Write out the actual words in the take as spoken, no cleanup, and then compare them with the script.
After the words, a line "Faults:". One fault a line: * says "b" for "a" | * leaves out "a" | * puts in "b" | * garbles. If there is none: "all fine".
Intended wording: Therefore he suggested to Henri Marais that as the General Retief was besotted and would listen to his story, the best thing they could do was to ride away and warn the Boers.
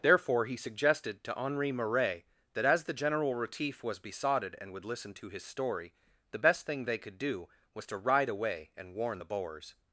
Therefore he suggested to Henri Marais that as the General Retief was besotted and would listen to his story, the best thing they could do was to ride away and warn the Boers.
Faults:
all fine